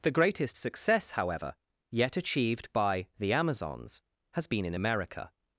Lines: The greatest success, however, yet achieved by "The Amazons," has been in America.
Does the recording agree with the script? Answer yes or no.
yes